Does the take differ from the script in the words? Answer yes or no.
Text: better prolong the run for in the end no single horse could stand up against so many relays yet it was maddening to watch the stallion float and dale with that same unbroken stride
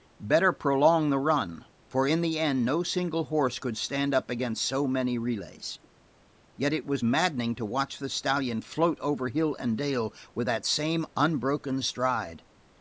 yes